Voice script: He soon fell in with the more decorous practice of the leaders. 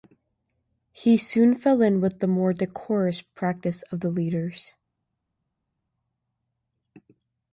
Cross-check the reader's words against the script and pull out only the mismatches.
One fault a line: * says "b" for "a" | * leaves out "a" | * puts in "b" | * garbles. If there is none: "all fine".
all fine